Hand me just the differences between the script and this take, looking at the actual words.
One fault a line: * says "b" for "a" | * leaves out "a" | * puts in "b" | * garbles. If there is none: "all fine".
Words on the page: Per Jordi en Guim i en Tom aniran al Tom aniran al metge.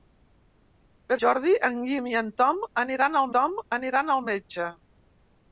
all fine